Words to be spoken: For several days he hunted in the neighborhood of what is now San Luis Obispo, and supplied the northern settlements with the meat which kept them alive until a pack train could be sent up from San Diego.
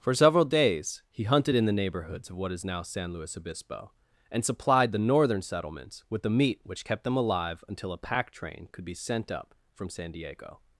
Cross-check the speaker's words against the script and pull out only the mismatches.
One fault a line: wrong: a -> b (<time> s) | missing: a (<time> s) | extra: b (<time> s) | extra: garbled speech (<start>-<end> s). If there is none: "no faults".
wrong: neighborhood -> neighborhoods (1.7 s)